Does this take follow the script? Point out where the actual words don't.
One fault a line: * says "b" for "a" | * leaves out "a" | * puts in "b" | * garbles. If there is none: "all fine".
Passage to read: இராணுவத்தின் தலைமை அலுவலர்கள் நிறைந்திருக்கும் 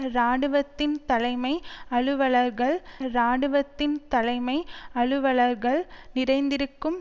* puts in "இராணுவத்தின் தலைமை அலுவலர்கள்"